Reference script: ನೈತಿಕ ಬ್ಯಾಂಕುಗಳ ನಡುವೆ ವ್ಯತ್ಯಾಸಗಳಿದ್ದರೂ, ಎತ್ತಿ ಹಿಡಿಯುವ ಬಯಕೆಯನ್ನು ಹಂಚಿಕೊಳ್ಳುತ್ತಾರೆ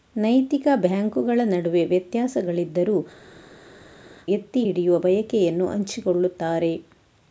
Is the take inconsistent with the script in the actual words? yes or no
no